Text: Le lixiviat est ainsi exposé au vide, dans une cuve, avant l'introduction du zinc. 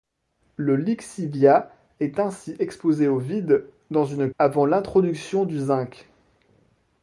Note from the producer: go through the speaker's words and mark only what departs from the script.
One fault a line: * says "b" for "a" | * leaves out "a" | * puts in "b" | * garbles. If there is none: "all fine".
* leaves out "cuve"